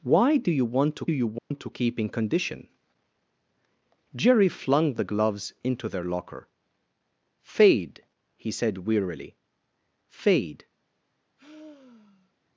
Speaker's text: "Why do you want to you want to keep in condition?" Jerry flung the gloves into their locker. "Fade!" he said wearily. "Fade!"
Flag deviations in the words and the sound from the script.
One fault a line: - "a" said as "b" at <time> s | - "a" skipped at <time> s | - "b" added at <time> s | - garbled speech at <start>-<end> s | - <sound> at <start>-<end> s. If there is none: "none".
- dropout at 1.4-1.5 s
- sigh at 11.4-12.3 s